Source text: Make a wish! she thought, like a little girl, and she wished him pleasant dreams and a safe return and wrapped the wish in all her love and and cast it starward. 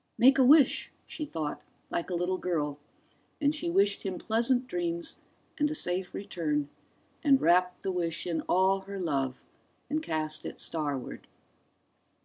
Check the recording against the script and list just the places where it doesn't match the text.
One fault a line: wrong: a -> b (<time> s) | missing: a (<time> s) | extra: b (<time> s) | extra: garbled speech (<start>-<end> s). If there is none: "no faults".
missing: and (10.0 s)